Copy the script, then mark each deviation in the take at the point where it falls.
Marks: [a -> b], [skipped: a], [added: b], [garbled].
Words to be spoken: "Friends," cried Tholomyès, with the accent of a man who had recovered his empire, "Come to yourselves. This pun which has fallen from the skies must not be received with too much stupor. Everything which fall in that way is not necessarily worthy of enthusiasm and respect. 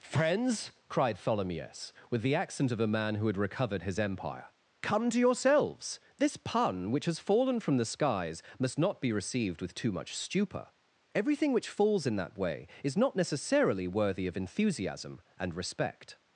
"Friends," cried Tholomyès, with the accent of a man who had recovered his empire, "Come to yourselves. This pun which has fallen from the skies must not be received with too much stupor. Everything which [fall -> falls] in that way is not necessarily worthy of enthusiasm and respect.